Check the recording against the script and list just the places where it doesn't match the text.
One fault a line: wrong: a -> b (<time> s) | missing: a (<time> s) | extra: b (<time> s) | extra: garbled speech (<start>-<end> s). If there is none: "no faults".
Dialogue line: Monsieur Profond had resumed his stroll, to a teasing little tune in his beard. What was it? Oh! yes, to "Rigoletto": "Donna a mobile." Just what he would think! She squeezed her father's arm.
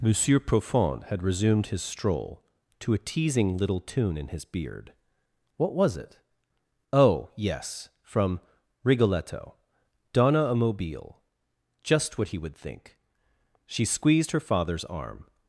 wrong: to -> from (8.0 s)